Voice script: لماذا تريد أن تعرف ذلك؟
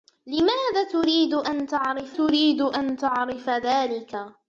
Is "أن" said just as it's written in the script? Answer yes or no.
yes